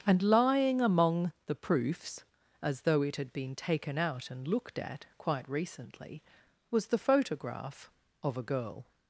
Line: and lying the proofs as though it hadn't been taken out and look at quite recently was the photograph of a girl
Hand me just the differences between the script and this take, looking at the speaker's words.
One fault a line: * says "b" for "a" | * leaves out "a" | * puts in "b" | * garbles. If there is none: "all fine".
* puts in "among"
* says "had" for "hadn't"
* says "looked" for "look"